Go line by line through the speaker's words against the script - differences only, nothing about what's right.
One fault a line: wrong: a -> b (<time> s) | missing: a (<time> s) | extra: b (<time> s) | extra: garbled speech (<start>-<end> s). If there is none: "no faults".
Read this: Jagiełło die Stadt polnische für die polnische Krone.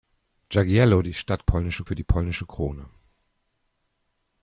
no faults